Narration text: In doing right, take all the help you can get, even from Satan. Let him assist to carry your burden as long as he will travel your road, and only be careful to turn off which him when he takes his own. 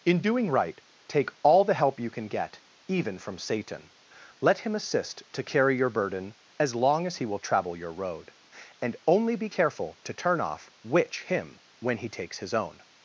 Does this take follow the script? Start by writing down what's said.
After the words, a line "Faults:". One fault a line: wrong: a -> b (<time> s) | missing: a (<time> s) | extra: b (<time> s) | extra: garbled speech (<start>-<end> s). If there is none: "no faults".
In doing right, take all the help you can get, even from Satan. Let him assist to carry your burden as long as he will travel your road, and only be careful to turn off which him when he takes his own.
Faults:
no faults